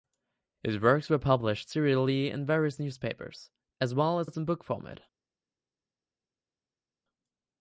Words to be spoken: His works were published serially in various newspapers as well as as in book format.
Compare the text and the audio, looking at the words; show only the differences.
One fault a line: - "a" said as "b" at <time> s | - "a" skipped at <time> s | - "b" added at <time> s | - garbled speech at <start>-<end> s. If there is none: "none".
none